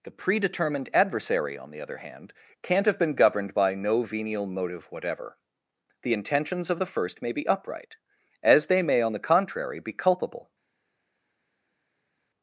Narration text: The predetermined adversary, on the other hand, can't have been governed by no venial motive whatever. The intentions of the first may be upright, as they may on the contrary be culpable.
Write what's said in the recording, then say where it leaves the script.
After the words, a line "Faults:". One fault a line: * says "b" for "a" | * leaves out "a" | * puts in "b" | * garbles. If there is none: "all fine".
The predetermined adversary, on the other hand, can't have been governed by no venial motive whatever. The intentions of the first may be upright, as they may on the contrary be culpable.
Faults:
all fine